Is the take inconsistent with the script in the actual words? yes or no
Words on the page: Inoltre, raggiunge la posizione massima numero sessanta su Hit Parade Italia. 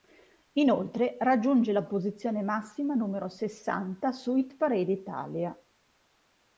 no